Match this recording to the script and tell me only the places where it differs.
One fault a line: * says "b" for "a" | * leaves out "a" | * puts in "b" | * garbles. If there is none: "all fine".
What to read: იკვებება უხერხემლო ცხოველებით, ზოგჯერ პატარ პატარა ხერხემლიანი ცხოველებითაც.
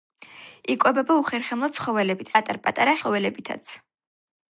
* leaves out "ზოგჯერ"
* leaves out "ხერხემლიანი"